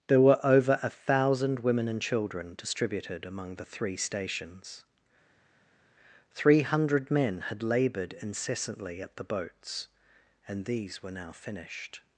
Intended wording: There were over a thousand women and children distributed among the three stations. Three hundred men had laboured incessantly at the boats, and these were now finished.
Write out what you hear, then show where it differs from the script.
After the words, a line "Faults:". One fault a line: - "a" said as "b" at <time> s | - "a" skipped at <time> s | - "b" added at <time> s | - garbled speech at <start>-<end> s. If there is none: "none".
There were over a thousand women and children distributed among the three stations. Three hundred men had laboured incessantly at the boats, and these were now finished.
Faults:
none